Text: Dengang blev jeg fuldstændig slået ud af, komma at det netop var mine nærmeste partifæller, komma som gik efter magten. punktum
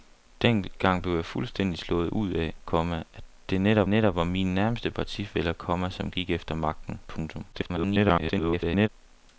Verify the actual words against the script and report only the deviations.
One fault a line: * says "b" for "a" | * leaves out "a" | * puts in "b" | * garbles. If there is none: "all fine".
* puts in "netop"
* garbles